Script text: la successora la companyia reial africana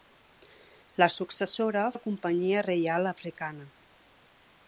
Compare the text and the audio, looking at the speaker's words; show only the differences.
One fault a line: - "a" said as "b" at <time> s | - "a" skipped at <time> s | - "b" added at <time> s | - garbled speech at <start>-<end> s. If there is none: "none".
none